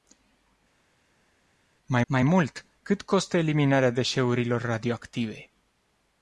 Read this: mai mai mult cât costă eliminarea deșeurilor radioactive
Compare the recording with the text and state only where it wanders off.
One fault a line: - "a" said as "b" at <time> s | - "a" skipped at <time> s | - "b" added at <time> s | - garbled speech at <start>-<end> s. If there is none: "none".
none